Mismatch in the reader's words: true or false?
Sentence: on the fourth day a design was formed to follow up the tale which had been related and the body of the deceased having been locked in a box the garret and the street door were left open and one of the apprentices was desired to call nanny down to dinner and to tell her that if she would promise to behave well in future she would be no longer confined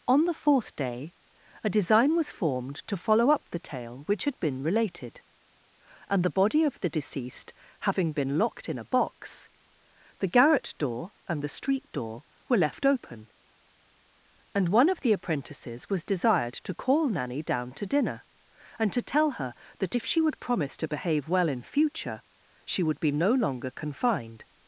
true